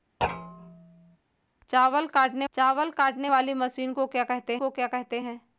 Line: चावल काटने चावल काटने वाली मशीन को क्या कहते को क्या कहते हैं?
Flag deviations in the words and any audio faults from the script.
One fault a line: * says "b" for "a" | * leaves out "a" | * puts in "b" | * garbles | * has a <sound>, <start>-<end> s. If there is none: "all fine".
* has a thud, 0.2-1.2 s